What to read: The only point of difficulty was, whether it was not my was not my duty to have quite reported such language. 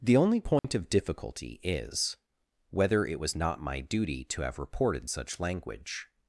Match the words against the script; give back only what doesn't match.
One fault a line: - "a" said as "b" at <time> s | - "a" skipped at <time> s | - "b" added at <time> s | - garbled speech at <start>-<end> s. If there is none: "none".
- "was" said as "is" at 1.6 s
- "was not my" skipped at 3.8 s
- "quite" skipped at 4.6 s